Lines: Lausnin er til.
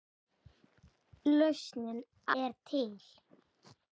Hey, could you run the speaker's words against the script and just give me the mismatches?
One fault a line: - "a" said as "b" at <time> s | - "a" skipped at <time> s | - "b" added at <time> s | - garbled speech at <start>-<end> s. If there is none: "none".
none